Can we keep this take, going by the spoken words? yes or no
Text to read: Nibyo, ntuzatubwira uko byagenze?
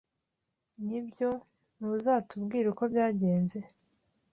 yes